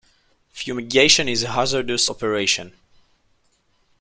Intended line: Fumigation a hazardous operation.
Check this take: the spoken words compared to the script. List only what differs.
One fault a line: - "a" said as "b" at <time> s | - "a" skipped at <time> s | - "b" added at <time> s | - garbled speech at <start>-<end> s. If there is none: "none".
- "is" added at 1.3 s